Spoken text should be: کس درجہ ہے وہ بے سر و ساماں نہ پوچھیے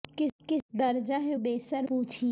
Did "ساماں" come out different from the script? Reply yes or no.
yes